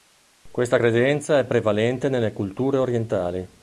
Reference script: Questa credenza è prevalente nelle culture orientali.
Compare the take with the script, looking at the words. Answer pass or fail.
pass